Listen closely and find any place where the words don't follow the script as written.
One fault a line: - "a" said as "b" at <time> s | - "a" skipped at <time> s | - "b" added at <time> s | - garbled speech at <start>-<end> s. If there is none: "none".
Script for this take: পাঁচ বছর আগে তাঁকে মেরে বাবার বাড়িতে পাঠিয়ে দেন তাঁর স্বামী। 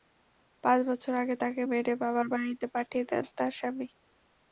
none